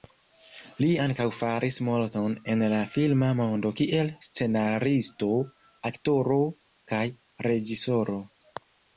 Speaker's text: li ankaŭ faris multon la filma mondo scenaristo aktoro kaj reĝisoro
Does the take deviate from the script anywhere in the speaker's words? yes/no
yes